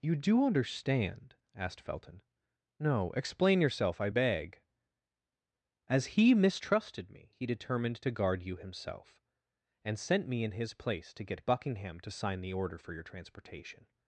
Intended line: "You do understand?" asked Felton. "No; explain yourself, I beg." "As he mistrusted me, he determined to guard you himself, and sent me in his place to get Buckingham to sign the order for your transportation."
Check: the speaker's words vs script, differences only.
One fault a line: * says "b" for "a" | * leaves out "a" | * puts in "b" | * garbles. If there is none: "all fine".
all fine